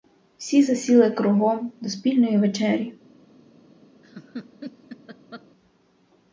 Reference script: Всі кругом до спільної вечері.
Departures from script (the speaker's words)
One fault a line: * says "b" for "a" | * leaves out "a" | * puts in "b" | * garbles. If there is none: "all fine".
* puts in "засіли"